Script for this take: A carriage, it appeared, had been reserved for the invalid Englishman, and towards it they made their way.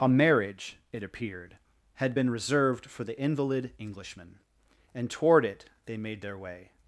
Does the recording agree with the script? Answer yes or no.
no